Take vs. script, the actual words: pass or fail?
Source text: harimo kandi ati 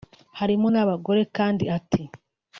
fail